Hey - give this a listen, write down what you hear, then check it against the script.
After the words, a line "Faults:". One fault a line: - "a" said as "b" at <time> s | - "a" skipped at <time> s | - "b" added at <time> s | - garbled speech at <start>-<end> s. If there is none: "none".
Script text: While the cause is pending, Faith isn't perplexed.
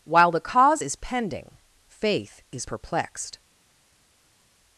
While the cause is pending, Faith is perplexed.
Faults:
- "isn't" said as "is" at 2.5 s